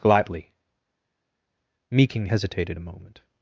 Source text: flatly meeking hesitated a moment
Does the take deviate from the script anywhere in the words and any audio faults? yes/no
yes